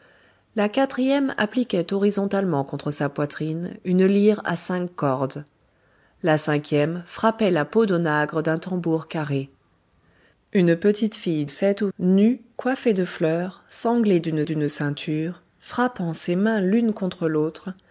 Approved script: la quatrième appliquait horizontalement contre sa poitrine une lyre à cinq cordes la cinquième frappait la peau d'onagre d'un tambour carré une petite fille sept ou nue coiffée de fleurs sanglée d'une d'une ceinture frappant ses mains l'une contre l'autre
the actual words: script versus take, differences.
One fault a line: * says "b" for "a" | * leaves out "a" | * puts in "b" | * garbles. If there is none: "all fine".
all fine